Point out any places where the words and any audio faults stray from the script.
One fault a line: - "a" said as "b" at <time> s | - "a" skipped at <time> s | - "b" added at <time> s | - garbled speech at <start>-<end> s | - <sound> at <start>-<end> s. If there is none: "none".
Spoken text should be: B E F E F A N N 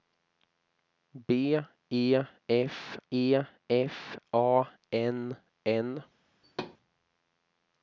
- thud at 6.4-6.8 s